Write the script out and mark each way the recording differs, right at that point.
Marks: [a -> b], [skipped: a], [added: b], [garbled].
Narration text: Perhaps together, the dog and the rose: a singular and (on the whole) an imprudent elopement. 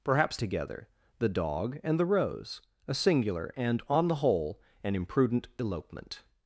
Perhaps together, the dog and the rose: a singular and (on the whole) an imprudent elopement.